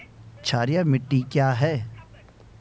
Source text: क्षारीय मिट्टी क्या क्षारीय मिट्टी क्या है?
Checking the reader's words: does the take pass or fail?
fail